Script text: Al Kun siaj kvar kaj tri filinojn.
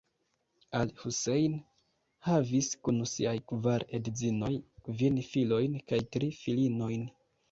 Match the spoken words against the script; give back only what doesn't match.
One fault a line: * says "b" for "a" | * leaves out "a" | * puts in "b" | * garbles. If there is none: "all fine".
* puts in "Husejn havis"
* puts in "edzinoj kvin filojn"